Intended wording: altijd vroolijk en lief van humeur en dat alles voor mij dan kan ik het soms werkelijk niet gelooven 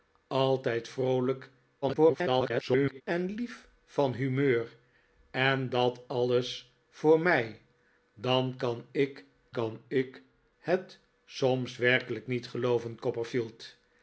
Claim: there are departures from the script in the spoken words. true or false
true